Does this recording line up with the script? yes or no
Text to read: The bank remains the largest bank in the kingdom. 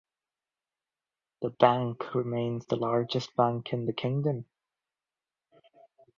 yes